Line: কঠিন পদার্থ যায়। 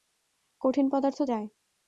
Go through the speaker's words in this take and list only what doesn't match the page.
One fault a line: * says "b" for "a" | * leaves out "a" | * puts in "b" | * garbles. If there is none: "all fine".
all fine